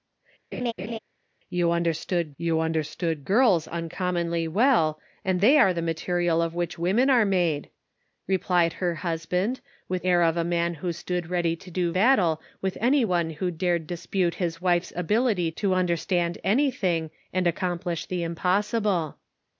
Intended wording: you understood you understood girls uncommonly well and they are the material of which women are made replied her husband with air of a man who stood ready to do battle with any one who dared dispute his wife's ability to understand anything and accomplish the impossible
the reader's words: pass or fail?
pass